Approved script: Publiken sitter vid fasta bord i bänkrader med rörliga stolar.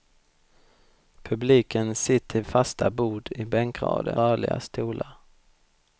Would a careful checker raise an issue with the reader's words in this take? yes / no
yes